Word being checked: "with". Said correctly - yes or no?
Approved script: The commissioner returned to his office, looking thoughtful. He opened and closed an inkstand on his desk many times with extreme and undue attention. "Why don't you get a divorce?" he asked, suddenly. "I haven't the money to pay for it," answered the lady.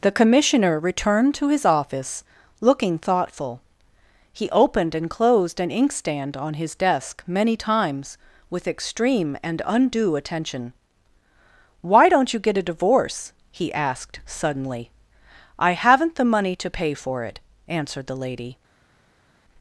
yes